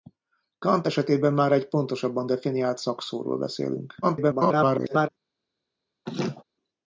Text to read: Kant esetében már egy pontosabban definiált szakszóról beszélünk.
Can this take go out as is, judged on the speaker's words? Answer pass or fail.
fail